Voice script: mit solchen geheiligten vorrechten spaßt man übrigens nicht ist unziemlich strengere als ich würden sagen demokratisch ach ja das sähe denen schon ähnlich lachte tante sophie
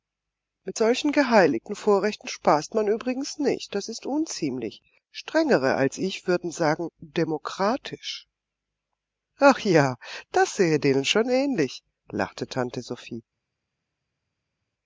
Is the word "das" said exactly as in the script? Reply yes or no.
yes